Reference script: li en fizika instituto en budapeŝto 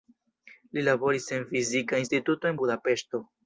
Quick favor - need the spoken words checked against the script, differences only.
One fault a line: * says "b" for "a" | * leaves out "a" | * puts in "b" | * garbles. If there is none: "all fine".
* puts in "laboris"